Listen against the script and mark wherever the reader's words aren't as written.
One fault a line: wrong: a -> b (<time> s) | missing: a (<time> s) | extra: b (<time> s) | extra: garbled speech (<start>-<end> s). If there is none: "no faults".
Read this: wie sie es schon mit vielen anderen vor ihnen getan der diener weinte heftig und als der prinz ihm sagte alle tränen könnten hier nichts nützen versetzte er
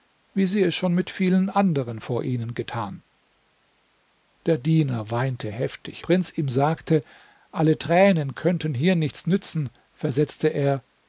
missing: und als der (6.0 s)